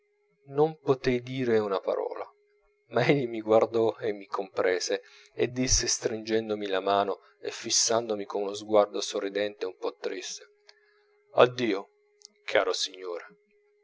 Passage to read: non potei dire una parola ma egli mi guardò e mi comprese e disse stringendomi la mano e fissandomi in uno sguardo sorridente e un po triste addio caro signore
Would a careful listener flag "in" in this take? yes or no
yes